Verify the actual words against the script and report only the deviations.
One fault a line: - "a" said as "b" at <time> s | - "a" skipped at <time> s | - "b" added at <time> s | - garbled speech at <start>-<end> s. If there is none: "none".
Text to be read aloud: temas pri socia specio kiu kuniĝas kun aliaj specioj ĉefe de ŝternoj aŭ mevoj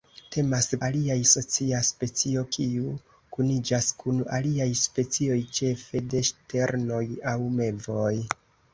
- "pri" said as "aliaj" at 0.9 s